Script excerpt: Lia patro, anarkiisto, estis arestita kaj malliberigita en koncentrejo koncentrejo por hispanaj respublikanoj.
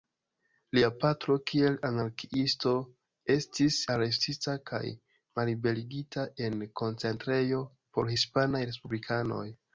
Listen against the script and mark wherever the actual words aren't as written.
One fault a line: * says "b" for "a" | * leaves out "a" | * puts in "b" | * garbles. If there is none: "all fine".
* puts in "kiel"
* leaves out "koncentrejo"